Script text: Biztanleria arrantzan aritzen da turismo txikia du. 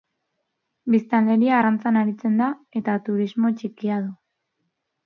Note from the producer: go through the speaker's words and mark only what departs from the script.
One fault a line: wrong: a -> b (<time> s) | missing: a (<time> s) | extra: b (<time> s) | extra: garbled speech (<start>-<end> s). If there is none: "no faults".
extra: eta (2.8 s)